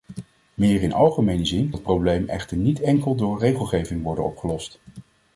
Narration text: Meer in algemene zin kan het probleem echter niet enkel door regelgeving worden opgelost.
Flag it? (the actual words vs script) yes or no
yes